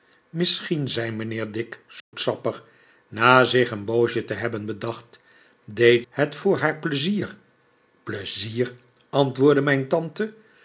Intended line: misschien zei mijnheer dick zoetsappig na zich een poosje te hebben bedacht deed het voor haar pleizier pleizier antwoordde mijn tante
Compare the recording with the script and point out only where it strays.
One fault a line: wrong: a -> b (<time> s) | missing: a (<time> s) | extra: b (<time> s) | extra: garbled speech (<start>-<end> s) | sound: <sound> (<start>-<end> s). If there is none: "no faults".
sound: dropout (2.0-2.1 s)